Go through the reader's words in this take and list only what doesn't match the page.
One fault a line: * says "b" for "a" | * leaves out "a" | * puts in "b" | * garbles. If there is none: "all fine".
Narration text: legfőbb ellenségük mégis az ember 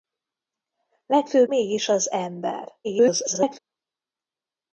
* leaves out "ellenségük"
* garbles